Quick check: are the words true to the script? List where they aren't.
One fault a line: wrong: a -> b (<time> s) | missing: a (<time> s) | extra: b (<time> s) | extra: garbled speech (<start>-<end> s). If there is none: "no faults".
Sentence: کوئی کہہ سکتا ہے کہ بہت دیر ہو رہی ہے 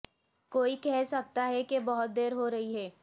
no faults